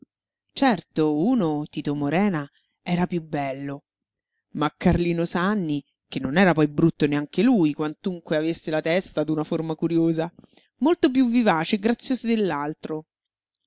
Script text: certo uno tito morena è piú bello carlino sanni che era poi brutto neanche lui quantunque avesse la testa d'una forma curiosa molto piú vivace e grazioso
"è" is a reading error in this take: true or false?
true